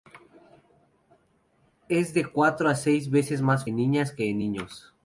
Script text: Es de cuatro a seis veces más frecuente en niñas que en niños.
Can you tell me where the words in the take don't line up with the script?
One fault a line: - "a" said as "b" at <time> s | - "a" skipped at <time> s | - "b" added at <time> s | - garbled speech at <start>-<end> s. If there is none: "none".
- "frecuente" skipped at 3.7 s